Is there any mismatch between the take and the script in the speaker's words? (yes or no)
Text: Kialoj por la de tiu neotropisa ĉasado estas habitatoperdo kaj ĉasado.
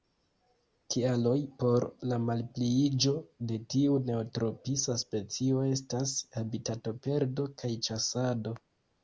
yes